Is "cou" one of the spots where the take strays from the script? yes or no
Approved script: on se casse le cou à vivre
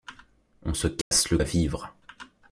yes